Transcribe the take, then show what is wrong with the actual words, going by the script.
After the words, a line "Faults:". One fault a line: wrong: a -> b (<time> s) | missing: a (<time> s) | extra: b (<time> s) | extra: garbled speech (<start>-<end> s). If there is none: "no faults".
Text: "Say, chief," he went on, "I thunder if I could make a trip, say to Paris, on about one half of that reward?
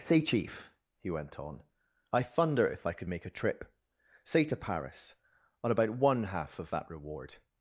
"Say, chief," he went on, "I thunder if I could make a trip, say to Paris, on about one half of that reward?
Faults:
no faults